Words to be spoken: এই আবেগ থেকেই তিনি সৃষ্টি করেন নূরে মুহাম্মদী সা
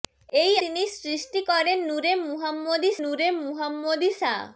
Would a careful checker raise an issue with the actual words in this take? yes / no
yes